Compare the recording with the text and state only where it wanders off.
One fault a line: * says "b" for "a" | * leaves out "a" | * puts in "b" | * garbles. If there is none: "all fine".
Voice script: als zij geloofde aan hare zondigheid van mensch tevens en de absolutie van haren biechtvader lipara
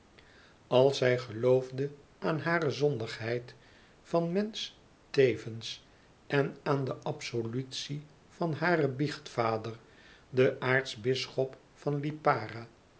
* puts in "aan"
* puts in "den aartsbisschop van"